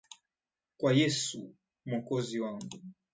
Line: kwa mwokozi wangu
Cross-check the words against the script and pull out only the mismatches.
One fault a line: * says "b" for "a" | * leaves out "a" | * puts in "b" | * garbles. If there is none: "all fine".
* puts in "yesu"